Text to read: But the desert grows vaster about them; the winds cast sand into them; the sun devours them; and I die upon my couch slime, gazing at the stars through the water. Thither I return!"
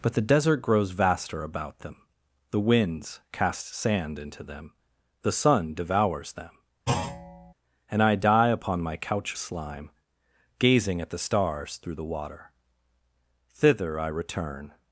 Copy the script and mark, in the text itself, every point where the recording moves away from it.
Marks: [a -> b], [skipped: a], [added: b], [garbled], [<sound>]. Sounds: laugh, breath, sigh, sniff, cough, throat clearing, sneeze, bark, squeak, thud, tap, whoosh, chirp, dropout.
But the desert grows vaster about them; the winds cast sand into them; the sun devours them; [thud] and I die upon my couch slime, gazing at the stars through the water. Thither I return!"